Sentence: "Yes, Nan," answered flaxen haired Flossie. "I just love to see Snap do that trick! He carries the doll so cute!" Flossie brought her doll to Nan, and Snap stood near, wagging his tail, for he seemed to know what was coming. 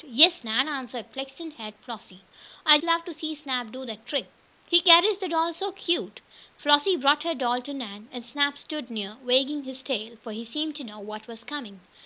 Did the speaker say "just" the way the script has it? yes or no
no